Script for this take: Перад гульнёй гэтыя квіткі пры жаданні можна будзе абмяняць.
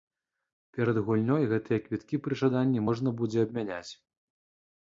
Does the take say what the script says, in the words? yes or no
yes